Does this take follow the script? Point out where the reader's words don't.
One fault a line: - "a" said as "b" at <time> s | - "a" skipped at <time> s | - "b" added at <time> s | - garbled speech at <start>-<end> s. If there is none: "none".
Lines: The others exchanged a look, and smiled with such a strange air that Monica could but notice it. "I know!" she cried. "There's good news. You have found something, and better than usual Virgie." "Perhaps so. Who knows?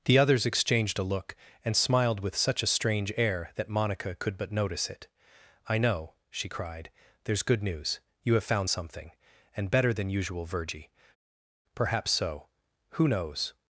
none